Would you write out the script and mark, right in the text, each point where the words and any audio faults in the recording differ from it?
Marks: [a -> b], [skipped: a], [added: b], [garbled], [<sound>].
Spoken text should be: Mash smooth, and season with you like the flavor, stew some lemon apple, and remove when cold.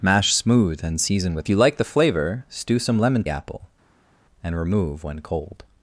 Mash smooth, and season with you like the flavor, stew some lemon apple, and remove when cold.